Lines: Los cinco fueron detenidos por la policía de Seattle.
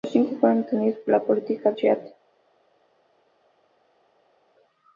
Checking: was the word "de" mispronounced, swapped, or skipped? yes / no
yes